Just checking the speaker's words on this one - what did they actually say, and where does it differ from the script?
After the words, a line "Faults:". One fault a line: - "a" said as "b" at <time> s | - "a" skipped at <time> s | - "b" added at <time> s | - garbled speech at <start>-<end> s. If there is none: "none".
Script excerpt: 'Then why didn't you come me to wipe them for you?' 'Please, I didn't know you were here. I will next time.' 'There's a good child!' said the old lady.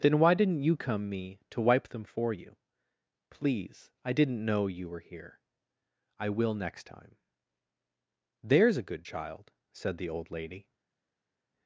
'Then why didn't you come me to wipe them for you?' 'Please, I didn't know you were here. I will next time.' 'There's a good child!' said the old lady.
Faults:
none